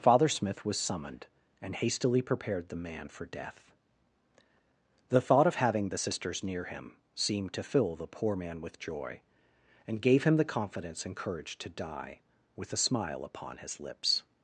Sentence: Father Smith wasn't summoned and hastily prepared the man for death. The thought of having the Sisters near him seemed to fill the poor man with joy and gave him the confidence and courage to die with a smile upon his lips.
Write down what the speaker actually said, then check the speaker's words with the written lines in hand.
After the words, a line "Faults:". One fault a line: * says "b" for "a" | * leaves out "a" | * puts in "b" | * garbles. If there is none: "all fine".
Father Smith was summoned and hastily prepared the man for death. The thought of having the Sisters near him seemed to fill the poor man with joy and gave him the confidence and courage to die with a smile upon his lips.
Faults:
* says "was" for "wasn't"